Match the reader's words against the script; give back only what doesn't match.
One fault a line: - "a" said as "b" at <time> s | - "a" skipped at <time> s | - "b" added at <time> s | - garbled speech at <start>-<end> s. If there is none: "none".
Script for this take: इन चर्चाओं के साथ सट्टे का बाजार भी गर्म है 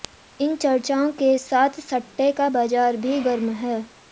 none